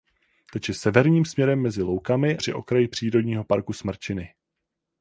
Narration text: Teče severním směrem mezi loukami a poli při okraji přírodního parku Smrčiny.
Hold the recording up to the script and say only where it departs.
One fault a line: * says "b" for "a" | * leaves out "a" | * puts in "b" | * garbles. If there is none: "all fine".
* leaves out "a poli"